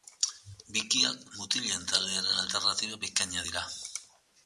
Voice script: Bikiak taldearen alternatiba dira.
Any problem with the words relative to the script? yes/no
yes